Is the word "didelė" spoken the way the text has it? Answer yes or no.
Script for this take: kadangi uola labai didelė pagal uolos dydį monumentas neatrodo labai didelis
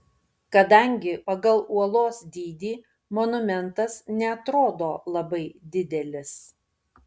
no